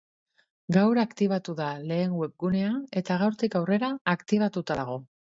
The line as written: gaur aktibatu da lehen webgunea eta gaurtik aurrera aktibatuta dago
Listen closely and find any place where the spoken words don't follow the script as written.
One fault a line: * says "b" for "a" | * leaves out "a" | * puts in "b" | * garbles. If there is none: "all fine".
all fine